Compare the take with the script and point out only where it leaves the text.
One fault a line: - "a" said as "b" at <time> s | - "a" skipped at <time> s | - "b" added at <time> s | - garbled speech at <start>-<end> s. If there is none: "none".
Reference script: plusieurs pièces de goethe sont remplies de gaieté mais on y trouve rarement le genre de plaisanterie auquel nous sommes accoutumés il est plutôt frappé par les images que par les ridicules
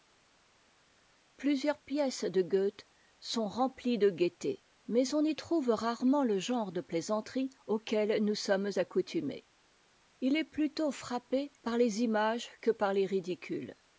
none